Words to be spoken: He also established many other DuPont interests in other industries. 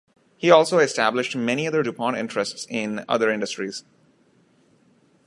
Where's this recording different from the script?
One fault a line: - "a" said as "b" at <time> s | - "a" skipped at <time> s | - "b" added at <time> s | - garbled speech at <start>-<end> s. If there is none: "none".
none